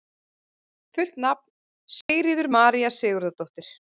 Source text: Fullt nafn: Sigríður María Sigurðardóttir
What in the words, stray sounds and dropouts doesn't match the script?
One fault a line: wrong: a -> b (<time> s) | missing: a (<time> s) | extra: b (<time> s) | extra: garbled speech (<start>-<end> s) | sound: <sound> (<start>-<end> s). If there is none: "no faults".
sound: dropout (2.0-2.1 s)